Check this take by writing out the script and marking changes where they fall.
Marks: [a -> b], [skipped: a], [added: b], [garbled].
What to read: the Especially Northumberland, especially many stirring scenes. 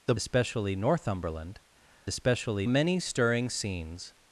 the Especially Northumberland, especially many stirring scenes.